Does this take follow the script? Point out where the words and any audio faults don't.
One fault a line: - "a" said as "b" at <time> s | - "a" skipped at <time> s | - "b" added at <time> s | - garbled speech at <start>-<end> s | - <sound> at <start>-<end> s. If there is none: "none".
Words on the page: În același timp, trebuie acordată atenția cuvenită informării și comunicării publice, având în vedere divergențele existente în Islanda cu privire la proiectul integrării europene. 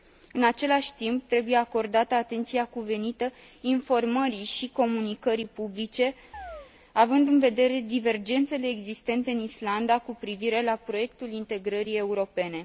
- chirp at 6.3-6.7 s